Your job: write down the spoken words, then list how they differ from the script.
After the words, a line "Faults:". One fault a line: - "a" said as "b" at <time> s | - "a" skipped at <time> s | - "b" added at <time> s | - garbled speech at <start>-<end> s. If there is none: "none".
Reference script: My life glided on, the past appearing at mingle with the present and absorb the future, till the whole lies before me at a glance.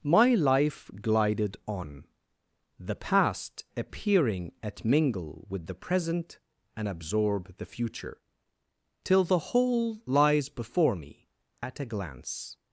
My life glided on, the past appearing at mingle with the present and absorb the future, till the whole lies before me at a glance.
Faults:
none